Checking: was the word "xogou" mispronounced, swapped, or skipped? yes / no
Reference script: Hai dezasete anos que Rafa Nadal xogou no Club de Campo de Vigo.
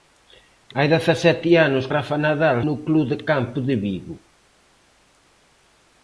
yes